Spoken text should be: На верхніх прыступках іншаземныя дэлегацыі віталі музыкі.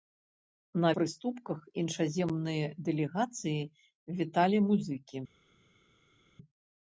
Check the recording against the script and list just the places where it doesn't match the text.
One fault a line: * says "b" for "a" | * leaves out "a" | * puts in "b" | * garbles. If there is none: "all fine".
* leaves out "верхніх"